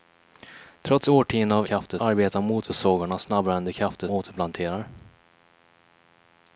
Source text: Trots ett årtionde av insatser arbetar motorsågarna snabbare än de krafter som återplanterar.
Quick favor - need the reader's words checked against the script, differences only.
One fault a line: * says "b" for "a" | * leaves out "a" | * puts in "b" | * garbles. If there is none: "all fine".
* leaves out "ett"
* says "krafter" for "insatser"
* leaves out "som"